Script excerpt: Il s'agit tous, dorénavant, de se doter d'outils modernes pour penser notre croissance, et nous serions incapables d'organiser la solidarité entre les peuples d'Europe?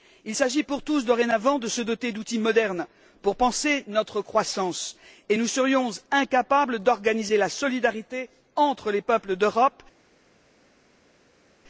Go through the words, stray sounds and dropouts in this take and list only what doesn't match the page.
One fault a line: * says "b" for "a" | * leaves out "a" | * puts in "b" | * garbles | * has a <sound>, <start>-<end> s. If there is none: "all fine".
* puts in "pour"